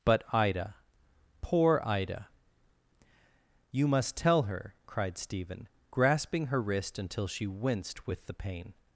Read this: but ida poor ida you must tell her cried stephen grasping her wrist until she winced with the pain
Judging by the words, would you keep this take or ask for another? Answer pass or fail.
pass